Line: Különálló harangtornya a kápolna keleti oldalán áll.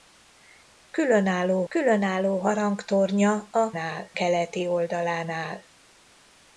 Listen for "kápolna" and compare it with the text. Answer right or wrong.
wrong